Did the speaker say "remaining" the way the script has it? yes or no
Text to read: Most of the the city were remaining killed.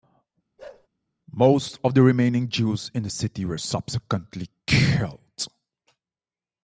no